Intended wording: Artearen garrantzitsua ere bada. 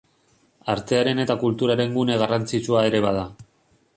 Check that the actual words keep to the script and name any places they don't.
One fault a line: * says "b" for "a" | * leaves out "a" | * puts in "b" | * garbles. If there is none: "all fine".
* puts in "eta kulturaren gune"